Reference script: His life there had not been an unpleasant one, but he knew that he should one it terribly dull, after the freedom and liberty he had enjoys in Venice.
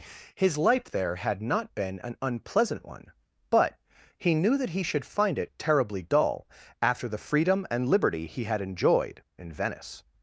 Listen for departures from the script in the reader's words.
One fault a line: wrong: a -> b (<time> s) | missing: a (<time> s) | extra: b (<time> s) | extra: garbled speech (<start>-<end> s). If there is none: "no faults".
wrong: one -> find (5.0 s)
wrong: enjoys -> enjoyed (8.6 s)